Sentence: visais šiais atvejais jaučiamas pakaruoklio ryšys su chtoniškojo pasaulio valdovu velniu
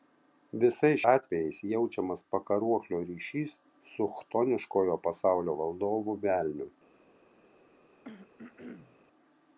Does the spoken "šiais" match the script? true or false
false